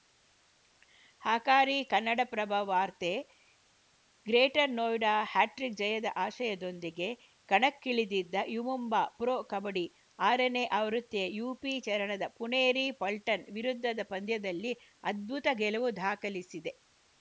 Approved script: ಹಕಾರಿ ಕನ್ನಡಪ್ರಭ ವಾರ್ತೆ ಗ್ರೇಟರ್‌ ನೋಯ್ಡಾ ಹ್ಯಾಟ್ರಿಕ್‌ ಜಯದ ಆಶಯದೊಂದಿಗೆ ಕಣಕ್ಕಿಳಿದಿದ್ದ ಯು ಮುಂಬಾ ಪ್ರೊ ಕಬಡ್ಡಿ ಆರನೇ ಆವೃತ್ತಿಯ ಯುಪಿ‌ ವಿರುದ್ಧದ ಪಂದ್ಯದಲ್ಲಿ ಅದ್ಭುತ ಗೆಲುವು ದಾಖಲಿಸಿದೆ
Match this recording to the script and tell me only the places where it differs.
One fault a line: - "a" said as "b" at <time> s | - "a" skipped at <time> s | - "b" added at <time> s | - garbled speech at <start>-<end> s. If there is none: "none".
- "ಚರಣದ ಪುಣೇರಿ ಪಲ್ಟನ್" added at 11.8 s